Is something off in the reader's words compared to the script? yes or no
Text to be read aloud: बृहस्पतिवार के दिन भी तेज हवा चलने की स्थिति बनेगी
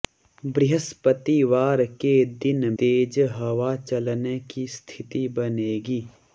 yes